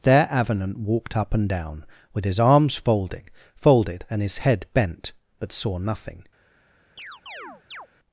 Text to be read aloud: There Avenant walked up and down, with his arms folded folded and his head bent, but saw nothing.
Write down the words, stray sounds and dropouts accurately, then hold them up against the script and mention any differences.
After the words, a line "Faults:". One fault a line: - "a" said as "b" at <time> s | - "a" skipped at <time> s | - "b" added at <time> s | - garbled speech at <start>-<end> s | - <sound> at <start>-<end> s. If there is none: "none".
There Avenant walked up and down, with his arms folded folded and his head bent, but saw nothing.
Faults:
- chirp at 7.0-7.9 s